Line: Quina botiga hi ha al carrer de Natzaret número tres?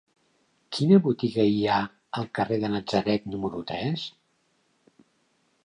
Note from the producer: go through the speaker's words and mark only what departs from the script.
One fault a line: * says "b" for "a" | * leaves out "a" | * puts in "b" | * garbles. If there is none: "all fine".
all fine